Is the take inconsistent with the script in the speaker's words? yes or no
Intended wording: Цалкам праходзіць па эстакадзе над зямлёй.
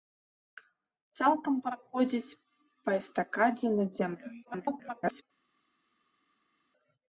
yes